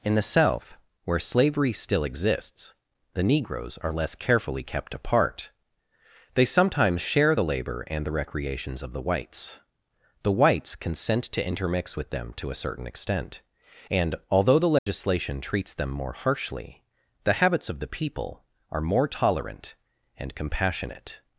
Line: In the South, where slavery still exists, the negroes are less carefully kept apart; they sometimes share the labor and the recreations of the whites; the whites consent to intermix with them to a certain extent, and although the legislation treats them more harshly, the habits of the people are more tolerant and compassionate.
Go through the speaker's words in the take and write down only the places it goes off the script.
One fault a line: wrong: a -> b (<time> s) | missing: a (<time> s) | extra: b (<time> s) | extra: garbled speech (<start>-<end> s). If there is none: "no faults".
no faults